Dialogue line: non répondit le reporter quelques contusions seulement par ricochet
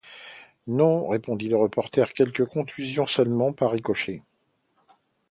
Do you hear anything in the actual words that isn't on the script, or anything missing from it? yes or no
no